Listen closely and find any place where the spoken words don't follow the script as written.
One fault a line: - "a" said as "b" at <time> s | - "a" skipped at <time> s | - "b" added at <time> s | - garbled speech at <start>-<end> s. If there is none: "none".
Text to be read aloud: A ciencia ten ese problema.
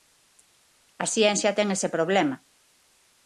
none